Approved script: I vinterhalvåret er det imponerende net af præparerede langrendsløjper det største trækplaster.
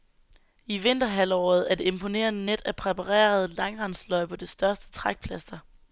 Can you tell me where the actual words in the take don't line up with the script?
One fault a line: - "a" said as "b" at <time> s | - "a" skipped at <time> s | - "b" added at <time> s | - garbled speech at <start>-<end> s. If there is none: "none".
none